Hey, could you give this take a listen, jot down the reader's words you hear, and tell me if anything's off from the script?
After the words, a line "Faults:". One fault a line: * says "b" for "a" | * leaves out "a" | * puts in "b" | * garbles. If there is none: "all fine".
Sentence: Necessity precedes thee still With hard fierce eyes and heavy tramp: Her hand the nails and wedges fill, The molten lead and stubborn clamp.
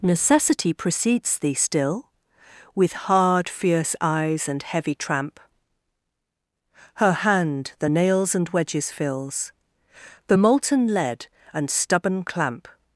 Necessity precedes thee still With hard fierce eyes and heavy tramp: Her hand the nails and wedges fills, The molten lead and stubborn clamp.
Faults:
* says "fills" for "fill"